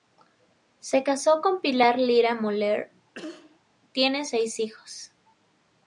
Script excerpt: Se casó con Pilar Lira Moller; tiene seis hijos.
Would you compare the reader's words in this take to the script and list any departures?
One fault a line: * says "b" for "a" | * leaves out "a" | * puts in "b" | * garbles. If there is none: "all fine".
all fine